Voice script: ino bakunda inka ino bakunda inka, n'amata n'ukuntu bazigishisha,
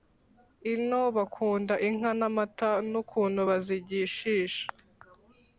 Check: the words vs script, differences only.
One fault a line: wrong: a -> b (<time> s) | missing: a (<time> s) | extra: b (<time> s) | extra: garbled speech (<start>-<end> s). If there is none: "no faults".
missing: ino bakunda inka (2.1 s)